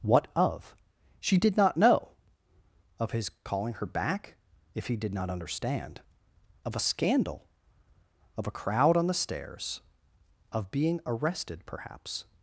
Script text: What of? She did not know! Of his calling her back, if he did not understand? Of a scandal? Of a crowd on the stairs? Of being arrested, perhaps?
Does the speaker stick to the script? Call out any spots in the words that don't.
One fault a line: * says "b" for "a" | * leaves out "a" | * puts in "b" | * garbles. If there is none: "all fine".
all fine